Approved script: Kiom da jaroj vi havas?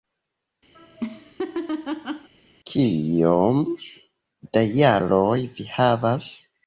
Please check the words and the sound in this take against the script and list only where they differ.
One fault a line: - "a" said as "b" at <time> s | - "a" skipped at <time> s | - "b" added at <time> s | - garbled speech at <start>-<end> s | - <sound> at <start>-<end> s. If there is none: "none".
- laugh at 0.7-2.3 s